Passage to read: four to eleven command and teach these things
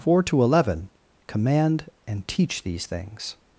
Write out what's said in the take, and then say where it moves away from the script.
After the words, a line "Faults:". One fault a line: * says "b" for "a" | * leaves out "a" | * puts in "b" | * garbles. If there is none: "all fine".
four to eleven command and teach these things
Faults:
all fine